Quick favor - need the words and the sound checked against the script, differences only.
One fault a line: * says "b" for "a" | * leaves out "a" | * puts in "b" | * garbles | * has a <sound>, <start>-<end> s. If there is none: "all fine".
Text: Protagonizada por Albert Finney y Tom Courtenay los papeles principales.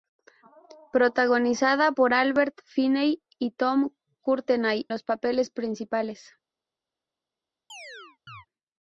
* has a chirp, 7.7-8.5 s